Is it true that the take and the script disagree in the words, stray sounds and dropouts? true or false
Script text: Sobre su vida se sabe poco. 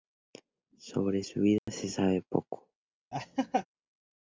true